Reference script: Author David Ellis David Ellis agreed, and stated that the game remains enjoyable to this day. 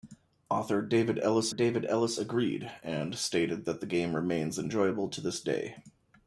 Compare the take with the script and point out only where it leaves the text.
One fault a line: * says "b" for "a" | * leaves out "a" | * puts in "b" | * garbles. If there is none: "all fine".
all fine